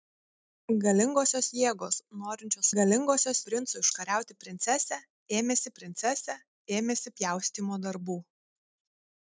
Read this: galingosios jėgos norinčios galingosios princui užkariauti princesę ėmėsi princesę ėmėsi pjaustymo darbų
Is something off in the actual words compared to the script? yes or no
no